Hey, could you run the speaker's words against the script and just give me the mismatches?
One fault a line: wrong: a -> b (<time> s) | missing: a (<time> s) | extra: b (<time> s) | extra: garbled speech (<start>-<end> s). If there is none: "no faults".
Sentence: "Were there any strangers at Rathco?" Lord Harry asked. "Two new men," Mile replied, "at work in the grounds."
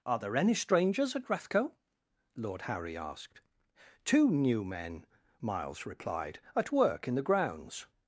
wrong: Were -> Are (0.1 s)
wrong: Mile -> Miles (5.4 s)